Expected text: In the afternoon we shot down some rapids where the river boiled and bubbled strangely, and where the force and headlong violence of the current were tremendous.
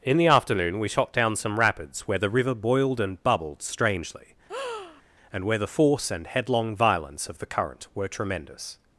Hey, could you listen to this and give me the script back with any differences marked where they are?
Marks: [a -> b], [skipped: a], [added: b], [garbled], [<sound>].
In the afternoon we shot down some rapids where the river boiled and bubbled strangely, [breath] and where the force and headlong violence of the current were tremendous.